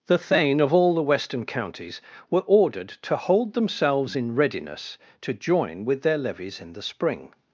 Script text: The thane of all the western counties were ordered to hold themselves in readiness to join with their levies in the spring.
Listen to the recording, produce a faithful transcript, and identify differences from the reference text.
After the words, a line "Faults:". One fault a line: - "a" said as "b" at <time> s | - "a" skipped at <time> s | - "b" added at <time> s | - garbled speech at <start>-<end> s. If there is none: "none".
The thane of all the western counties were ordered to hold themselves in readiness to join with their levies in the spring.
Faults:
none